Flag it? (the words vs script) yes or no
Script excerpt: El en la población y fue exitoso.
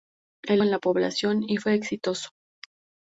no